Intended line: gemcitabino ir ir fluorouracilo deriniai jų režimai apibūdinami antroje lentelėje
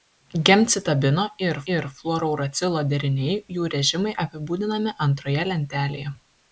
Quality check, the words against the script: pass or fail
pass